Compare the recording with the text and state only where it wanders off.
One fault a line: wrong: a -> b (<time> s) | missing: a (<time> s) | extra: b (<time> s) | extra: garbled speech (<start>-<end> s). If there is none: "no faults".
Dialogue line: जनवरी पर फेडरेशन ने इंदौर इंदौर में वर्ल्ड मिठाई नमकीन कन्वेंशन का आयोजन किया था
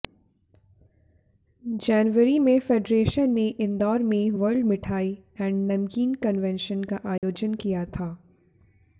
wrong: पर -> में (2.4 s)
missing: इंदौर (4.0 s)
extra: एंड (5.4 s)